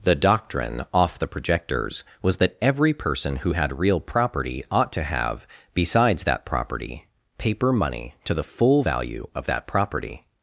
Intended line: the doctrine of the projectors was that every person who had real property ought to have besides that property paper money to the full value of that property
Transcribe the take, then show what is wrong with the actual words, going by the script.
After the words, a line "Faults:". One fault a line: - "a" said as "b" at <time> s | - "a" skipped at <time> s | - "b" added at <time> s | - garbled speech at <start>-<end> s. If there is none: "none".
the doctrine off the projectors was that every person who had real property ought to have besides that property paper money to the full value of that property
Faults:
- "of" said as "off" at 0.9 s